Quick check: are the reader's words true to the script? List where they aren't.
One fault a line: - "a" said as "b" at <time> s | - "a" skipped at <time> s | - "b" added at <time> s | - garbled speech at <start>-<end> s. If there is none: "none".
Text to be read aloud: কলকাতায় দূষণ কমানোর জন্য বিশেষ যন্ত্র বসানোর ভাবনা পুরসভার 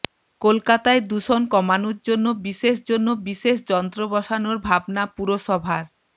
- "জন্য বিশেষ" added at 2.9 s